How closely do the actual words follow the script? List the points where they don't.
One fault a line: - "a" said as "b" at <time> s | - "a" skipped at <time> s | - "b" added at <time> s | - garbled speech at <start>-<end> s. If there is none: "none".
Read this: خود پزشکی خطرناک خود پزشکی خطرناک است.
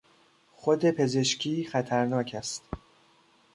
- "خود پزشکی خطرناک" skipped at 2.3 s